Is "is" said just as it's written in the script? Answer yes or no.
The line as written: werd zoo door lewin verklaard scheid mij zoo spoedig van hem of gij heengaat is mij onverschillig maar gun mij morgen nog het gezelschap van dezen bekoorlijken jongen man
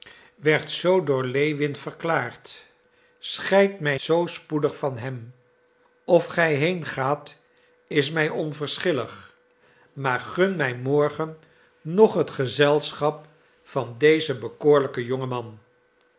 yes